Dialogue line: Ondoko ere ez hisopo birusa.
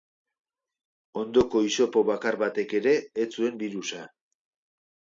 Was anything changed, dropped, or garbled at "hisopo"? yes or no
yes